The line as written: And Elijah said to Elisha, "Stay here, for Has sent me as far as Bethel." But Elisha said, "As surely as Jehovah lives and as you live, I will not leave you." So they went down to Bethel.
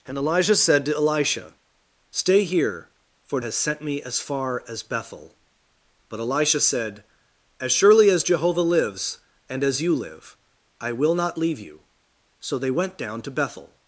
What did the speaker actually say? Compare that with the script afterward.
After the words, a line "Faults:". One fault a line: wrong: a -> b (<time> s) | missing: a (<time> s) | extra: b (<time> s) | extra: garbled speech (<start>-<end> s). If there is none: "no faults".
And Elijah said to Elisha, "Stay here, for Has sent me as far as Bethel." But Elisha said, "As surely as Jehovah lives and as you live, I will not leave you." So they went down to Bethel.
Faults:
no faults